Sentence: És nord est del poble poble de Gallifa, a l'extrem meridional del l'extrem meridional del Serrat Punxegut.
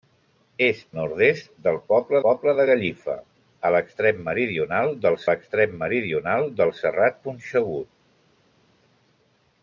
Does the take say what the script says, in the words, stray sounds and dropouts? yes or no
yes